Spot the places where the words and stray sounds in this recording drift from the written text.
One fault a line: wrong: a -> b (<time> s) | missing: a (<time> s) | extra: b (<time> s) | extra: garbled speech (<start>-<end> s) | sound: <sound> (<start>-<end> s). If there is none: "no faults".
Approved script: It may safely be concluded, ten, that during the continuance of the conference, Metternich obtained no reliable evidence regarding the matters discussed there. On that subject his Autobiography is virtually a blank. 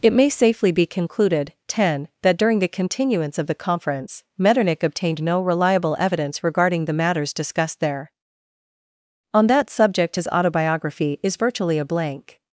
no faults